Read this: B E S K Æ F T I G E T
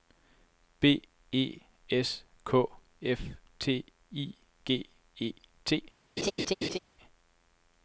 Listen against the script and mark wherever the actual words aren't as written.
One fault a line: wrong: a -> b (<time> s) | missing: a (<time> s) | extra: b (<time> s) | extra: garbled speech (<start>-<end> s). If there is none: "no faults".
no faults